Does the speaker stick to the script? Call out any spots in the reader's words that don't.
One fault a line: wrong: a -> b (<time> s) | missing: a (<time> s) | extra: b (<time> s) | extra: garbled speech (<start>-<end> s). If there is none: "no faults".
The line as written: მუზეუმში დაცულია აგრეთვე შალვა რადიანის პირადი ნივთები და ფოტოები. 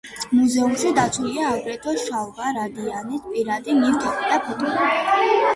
no faults